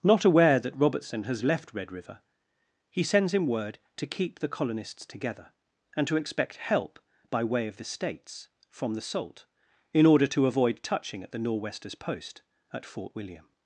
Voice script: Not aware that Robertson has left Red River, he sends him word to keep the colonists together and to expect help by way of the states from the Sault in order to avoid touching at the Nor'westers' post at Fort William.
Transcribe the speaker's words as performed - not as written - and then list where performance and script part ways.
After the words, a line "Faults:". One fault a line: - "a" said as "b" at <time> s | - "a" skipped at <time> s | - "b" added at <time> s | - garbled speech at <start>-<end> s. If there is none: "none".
Not aware that Robertson has left Red River, he sends him word to keep the colonists together and to expect help by way of the states from the Sault in order to avoid touching at the Nor'westers' post at Fort William.
Faults:
none